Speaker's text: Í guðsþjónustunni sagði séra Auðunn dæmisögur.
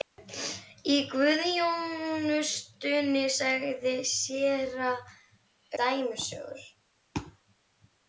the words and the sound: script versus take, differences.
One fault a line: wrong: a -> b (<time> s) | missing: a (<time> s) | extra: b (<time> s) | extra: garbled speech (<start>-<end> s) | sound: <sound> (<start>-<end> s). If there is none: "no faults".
missing: Auðunn (4.9 s)